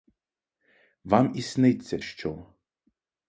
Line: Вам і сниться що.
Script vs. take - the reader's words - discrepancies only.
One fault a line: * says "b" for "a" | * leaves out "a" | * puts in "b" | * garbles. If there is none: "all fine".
all fine